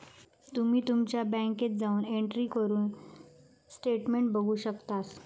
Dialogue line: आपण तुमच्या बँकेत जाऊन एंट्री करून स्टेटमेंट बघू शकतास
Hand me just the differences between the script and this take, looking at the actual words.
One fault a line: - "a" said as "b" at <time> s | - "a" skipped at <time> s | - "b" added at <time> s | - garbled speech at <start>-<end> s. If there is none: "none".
- "आपण" said as "तुम्ही" at 0.5 s